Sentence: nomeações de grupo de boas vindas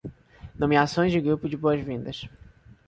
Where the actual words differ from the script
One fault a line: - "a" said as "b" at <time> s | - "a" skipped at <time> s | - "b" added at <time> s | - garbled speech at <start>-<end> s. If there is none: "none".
none